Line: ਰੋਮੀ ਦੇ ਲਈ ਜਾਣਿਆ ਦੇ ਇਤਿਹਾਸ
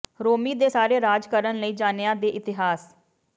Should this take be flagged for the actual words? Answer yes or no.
yes